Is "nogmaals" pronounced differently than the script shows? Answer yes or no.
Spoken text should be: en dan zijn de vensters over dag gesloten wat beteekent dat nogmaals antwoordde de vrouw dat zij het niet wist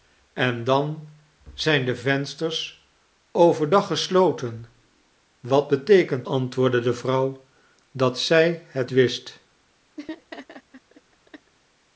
yes